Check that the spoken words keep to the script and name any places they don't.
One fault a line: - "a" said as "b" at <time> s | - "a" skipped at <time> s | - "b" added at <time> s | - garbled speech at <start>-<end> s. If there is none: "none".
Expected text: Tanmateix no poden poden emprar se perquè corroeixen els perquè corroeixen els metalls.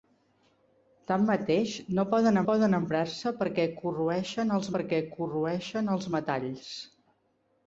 none